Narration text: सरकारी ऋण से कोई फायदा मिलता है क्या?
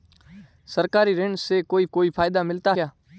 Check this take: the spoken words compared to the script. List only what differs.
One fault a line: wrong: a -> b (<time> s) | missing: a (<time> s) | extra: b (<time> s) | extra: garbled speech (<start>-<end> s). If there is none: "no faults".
extra: कोई (1.8 s)
missing: है (2.7 s)